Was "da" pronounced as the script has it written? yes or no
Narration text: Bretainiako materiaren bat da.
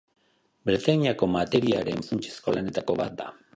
yes